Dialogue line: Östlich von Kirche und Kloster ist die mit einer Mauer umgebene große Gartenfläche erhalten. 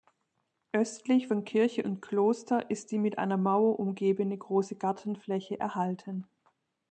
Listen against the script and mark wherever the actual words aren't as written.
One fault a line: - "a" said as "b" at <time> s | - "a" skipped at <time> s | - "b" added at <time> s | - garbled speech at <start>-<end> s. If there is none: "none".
none